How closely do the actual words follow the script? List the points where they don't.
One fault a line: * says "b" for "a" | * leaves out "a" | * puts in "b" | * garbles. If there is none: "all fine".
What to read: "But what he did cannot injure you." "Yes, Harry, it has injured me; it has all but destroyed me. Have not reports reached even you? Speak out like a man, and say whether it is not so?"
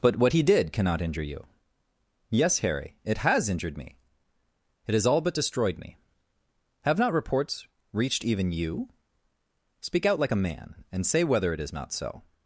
all fine